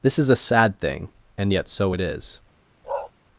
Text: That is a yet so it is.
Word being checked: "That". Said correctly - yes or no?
no